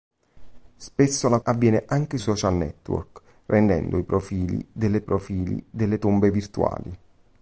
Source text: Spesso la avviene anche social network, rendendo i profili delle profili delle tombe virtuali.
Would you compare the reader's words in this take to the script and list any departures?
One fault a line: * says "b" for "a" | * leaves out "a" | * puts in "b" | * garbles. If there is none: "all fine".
all fine